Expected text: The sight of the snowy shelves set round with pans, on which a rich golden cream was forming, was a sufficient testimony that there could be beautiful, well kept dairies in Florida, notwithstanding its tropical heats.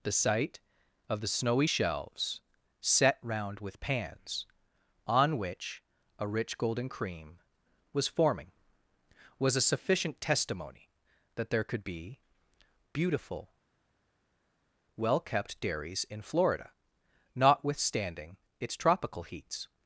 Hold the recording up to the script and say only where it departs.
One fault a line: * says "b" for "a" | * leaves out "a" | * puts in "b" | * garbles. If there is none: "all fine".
all fine